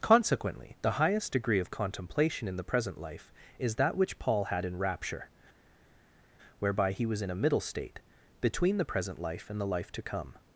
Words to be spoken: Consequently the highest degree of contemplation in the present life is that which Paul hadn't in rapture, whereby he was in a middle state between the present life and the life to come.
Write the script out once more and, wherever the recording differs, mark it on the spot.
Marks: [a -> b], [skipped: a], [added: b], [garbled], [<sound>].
Consequently the highest degree of contemplation in the present life is that which Paul [hadn't -> had] in rapture, whereby he was in a middle state between the present life and the life to come.